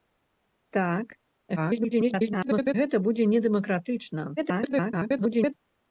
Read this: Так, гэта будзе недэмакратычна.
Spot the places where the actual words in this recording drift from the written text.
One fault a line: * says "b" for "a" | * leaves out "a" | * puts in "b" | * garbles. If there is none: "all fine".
* garbles
* garbles